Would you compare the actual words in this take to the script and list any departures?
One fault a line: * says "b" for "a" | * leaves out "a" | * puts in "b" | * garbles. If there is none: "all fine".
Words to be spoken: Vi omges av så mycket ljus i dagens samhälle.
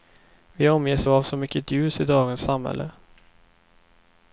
all fine